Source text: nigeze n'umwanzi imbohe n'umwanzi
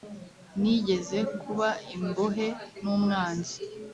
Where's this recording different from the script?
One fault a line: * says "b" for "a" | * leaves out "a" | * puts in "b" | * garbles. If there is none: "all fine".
* says "kuba" for "n'umwanzi"